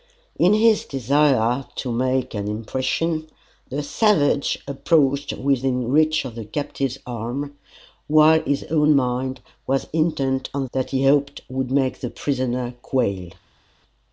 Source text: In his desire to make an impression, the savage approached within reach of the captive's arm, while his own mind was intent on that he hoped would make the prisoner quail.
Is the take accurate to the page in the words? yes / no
yes